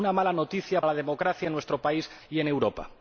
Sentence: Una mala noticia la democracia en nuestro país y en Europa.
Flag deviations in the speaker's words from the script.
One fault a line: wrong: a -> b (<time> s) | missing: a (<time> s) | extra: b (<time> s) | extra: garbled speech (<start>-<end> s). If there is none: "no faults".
no faults